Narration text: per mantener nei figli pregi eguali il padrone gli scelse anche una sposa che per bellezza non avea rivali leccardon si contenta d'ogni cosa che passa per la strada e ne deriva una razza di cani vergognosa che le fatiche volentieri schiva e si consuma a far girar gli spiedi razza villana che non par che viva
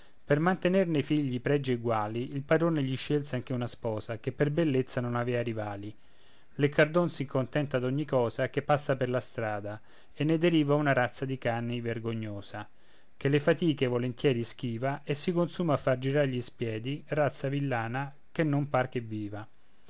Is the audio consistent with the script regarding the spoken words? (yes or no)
yes